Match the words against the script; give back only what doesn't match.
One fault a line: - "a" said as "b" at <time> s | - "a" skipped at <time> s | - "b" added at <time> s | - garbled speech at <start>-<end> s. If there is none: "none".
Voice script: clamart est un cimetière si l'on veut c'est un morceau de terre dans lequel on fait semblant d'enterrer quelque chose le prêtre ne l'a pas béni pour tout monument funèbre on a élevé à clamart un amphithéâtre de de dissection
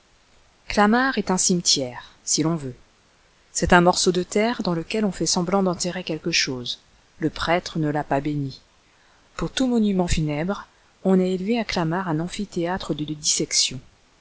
none